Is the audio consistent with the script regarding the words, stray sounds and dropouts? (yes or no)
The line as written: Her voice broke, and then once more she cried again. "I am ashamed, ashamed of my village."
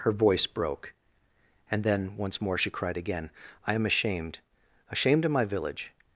yes